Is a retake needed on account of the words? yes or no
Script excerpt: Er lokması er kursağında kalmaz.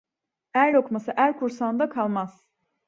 no